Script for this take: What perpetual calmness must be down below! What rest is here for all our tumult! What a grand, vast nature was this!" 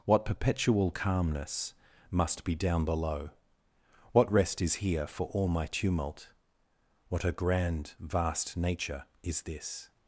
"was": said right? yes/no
no